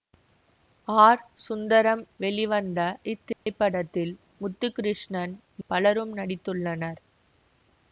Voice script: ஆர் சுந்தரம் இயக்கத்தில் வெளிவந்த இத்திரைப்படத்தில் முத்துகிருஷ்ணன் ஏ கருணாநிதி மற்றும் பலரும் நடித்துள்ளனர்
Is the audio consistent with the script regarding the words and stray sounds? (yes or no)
no